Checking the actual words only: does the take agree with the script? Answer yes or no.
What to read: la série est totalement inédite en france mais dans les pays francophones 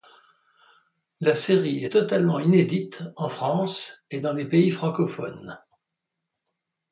no